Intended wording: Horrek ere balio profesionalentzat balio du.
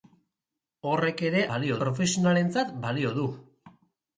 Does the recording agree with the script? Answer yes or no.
yes